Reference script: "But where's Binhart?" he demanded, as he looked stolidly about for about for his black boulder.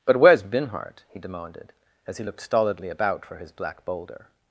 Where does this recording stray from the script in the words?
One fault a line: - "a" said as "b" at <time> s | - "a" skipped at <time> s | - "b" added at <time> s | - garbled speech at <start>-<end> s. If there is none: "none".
- "about for" skipped at 3.4 s